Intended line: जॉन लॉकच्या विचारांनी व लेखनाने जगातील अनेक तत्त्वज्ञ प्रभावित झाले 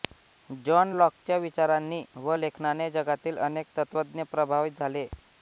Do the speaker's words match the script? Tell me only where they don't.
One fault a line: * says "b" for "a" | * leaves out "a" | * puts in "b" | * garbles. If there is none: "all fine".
all fine